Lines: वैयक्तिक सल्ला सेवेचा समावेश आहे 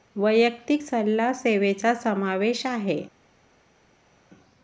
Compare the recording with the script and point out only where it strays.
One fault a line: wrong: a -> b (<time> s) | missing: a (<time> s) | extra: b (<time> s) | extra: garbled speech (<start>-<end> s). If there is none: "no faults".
no faults